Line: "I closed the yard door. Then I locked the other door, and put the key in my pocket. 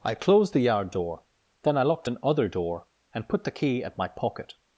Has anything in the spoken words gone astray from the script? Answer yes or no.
yes